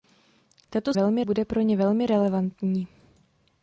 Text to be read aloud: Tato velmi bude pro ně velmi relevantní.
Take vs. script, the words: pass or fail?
pass